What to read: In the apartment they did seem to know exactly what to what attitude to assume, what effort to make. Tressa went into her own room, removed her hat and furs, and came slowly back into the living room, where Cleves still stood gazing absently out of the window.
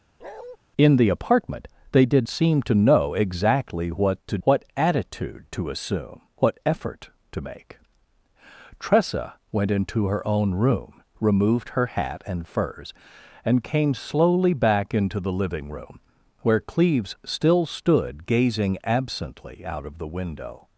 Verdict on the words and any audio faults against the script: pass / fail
fail